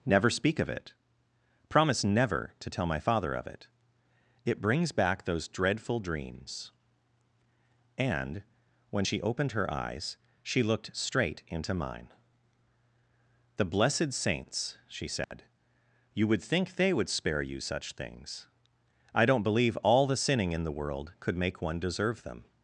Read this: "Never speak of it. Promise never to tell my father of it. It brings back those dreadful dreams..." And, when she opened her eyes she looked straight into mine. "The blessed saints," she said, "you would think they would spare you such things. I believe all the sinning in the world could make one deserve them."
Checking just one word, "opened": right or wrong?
right